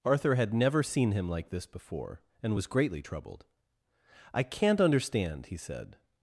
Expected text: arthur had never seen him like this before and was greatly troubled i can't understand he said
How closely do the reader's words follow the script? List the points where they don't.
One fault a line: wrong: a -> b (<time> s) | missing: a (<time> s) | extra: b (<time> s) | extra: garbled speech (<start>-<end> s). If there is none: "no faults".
no faults